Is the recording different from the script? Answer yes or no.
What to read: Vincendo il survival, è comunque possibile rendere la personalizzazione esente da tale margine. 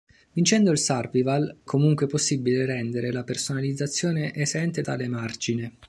yes